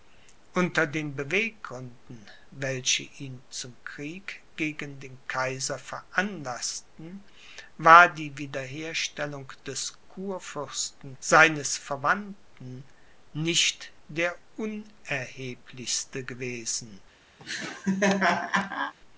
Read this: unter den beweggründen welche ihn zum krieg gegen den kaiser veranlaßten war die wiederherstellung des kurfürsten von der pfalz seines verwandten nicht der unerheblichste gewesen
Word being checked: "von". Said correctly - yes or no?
no